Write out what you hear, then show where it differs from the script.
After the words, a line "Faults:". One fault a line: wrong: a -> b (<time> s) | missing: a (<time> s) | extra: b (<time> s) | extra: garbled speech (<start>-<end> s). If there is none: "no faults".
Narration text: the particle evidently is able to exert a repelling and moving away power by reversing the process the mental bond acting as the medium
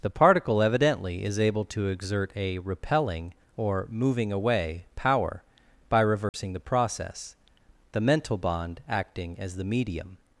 the particle evidently is able to exert a repelling or moving away power by reversing the process the mental bond acting as the medium
Faults:
wrong: and -> or (3.5 s)